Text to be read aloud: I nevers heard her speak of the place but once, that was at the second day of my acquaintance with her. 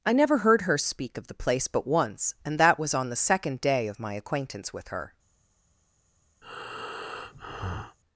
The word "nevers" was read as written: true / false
false